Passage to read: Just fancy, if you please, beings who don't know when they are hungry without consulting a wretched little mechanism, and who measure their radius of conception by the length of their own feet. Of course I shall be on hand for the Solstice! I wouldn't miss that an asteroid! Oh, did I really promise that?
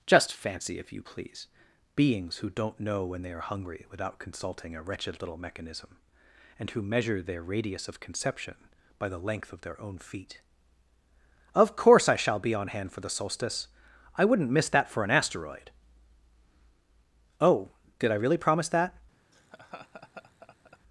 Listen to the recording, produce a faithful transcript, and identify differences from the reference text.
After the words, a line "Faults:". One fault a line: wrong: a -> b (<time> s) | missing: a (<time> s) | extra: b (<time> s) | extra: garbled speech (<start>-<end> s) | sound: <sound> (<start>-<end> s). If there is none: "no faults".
Just fancy, if you please, beings who don't know when they are hungry without consulting a wretched little mechanism, and who measure their radius of conception by the length of their own feet. Of course I shall be on hand for the Solstice! I wouldn't miss that for an asteroid! Oh, did I really promise that?
Faults:
extra: for (14.9 s)
sound: laugh (19.3-20.8 s)